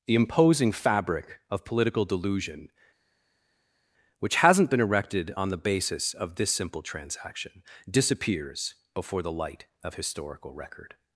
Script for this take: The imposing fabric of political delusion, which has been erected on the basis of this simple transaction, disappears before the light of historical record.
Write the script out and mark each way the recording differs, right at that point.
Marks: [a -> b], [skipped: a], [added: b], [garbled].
The imposing fabric of political delusion, which [has -> hasn't] been erected on the basis of this simple transaction, disappears before the light of historical record.